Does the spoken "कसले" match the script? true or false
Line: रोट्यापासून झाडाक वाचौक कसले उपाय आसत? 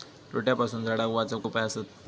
false